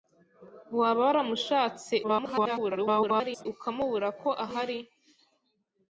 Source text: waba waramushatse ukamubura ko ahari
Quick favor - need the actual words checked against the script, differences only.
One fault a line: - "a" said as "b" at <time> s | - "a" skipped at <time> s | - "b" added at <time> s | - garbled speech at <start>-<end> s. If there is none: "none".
- garbled speech at 2.0-3.5 s